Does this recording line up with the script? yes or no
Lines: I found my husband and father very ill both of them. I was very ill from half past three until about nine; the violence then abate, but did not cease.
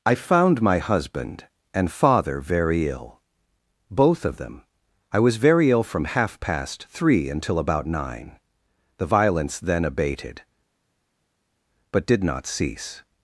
no